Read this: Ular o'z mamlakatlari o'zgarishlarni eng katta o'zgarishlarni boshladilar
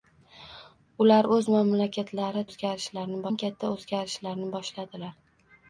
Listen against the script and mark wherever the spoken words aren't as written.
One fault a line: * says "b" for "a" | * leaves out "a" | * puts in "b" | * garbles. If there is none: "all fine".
all fine